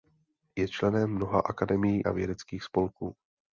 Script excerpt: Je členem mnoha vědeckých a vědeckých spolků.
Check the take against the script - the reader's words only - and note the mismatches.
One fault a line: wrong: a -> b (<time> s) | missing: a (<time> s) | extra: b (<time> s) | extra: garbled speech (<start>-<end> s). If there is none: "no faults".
wrong: vědeckých -> akademií (1.4 s)